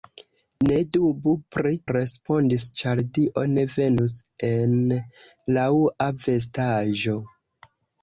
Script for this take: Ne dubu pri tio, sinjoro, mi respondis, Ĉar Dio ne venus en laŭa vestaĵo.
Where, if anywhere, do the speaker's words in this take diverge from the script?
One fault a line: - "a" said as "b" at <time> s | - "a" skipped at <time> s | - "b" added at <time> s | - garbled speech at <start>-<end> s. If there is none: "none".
- "tio sinjoro mi" skipped at 1.7 s